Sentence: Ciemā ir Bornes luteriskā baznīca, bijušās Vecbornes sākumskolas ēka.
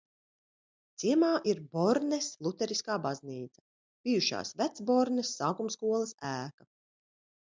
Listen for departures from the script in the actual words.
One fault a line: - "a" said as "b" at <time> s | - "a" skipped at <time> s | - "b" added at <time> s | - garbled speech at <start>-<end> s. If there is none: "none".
none